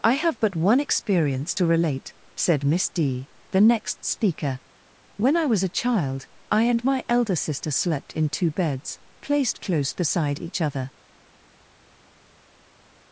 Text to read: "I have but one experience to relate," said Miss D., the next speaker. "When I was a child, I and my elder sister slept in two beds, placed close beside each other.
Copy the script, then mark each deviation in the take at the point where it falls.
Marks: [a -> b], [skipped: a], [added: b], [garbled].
"I have but one experience to relate," said Miss D., the next speaker. "When I was a child, I and my elder sister slept in two beds, placed close beside each other.